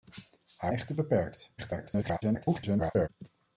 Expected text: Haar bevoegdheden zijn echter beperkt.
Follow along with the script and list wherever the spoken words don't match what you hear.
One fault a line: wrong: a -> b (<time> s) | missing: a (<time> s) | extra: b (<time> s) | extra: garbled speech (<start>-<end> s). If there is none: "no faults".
missing: bevoegdheden zijn (0.7 s)
extra: garbled speech (1.6-3.1 s)